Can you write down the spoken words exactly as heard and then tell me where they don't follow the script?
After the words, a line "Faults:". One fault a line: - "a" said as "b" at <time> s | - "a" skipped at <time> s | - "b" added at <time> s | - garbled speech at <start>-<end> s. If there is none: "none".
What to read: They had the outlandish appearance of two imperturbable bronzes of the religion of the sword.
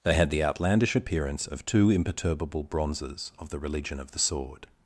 They had the outlandish appearance of two imperturbable bronzes of the religion of the sword.
Faults:
none